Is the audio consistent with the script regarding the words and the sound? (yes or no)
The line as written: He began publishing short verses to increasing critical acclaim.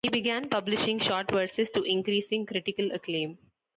yes